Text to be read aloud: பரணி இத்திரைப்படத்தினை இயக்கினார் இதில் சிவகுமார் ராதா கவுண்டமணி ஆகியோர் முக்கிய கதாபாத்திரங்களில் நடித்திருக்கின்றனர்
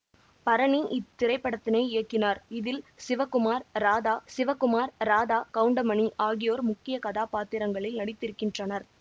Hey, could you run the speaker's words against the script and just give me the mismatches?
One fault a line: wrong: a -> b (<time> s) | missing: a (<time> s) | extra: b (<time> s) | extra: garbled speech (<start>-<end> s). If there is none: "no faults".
extra: சிவகுமார் ராதா (4.3 s)